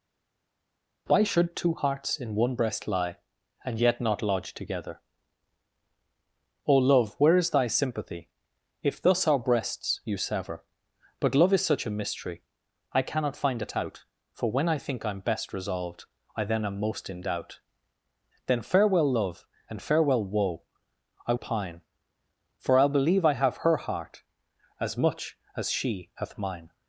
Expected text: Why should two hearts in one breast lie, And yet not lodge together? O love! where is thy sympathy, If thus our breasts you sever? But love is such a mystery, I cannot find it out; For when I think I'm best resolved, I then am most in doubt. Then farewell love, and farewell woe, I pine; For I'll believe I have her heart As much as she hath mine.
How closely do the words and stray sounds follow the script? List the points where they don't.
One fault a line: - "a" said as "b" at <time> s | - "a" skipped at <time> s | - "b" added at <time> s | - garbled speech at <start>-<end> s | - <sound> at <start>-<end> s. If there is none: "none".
none